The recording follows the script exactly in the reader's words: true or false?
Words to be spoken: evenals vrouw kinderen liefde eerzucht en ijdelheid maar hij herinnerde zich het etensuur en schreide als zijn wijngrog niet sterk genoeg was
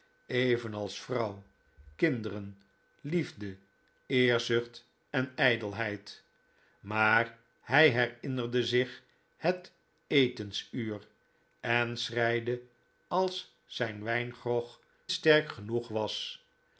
false